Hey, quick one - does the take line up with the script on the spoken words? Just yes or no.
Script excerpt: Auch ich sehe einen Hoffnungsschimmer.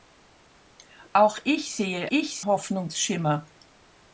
no